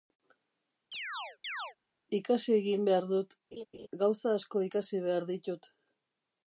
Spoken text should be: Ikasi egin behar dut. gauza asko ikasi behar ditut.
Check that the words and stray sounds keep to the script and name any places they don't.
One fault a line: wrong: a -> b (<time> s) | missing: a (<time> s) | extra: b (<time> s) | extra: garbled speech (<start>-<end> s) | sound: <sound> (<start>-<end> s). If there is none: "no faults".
sound: chirp (0.9-1.8 s)
sound: laugh (3.5-3.9 s)